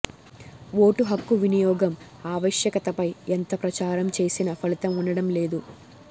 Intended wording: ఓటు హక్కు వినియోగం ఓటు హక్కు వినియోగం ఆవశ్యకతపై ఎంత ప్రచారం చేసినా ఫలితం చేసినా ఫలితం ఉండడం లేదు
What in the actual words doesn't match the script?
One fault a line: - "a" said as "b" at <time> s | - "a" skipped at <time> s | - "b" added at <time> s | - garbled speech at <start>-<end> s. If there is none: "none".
- "ఓటు హక్కు వినియోగం" skipped at 1.9 s
- "చేసినా ఫలితం" skipped at 4.9 s